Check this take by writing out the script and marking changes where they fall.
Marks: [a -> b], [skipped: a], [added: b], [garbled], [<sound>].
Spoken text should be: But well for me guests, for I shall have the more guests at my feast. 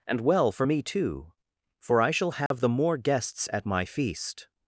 [But -> And] well for me [guests, -> too] for I shall have [dropout] the more guests at my feast.